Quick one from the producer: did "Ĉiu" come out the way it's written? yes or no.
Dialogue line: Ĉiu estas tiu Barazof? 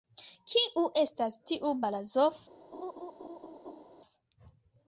no